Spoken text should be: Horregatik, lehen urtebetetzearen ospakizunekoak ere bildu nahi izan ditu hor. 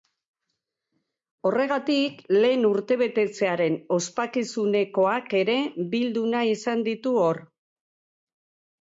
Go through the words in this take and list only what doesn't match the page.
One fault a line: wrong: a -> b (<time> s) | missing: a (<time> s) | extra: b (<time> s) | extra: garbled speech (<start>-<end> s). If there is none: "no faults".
no faults